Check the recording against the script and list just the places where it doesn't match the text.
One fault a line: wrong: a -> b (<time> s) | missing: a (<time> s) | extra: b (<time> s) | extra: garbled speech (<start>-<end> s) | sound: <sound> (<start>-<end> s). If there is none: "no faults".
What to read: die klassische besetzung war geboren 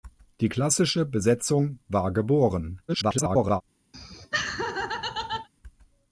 extra: garbled speech (2.9-3.6 s)
sound: laugh (3.9-5.5 s)